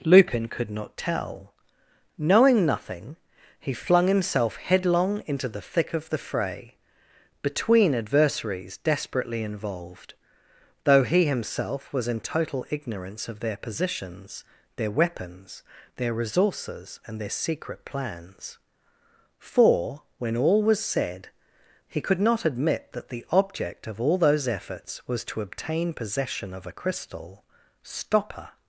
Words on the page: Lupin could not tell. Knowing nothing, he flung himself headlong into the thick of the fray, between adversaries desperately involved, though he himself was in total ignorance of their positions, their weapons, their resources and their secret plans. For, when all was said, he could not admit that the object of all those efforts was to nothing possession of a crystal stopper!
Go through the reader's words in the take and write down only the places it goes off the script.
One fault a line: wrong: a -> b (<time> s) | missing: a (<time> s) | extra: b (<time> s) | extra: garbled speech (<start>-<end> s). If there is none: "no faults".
wrong: nothing -> obtain (25.4 s)